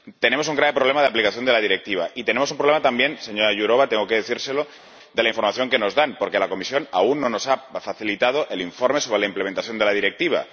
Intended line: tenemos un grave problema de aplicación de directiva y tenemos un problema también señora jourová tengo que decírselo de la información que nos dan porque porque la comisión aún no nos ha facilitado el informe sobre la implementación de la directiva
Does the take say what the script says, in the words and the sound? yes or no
no